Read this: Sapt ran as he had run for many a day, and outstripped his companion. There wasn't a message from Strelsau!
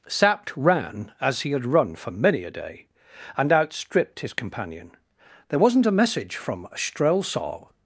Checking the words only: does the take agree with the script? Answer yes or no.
yes